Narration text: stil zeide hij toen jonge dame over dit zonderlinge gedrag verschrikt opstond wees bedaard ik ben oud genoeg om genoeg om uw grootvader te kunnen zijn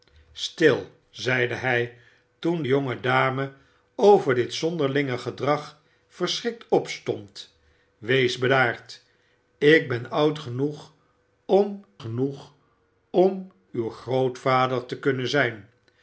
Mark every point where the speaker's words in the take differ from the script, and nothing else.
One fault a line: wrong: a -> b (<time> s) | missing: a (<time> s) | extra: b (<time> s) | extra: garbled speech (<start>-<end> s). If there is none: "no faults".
no faults